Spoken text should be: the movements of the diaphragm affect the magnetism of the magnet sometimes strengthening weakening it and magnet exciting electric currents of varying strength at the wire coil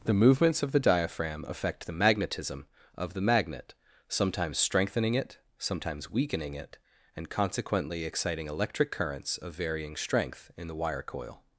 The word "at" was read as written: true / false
false